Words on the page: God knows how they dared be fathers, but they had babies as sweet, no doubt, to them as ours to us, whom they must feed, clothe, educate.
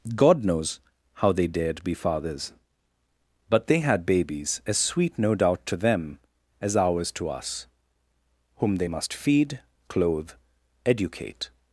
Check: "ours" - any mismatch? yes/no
no